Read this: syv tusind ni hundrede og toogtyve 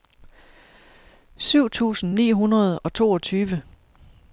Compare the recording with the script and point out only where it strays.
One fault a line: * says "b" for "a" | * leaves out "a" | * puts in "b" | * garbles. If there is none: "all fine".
all fine